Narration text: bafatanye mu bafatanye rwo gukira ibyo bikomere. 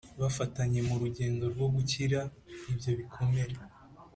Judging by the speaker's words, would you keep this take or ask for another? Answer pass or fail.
fail